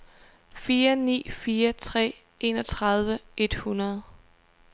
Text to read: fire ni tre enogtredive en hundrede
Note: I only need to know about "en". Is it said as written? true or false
false